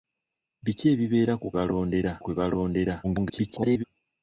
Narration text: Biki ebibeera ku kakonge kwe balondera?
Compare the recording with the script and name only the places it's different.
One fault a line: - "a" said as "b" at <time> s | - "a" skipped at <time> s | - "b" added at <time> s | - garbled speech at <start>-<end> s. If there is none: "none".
- "kakonge" said as "balondera" at 1.5 s
- garbled speech at 3.0-3.8 s